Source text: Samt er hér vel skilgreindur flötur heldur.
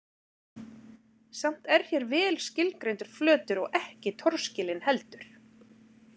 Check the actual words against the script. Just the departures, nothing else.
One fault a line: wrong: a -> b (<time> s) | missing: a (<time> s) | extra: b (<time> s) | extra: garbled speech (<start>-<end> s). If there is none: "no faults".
extra: og ekki torskilinn (3.7 s)